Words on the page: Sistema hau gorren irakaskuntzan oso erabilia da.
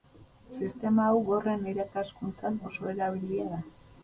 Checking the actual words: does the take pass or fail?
pass